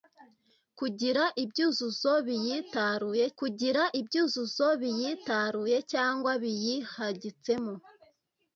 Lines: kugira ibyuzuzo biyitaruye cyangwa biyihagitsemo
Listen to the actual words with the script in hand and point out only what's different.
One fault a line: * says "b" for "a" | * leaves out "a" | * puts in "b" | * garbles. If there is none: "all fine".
* puts in "kugira ibyuzuzo biyitaruye"